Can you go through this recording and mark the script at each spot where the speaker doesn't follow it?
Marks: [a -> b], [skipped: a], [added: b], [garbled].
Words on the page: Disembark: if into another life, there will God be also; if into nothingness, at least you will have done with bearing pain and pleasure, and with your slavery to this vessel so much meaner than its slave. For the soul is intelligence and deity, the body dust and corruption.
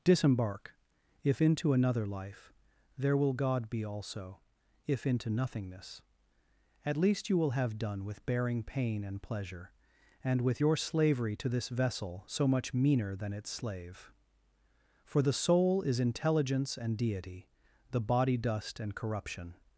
Disembark: if into another life, there will God be also; if into nothingness, at least you will have done with bearing pain and pleasure, and with your slavery to this vessel so much meaner than its slave. For the soul is intelligence and deity, the body dust and corruption.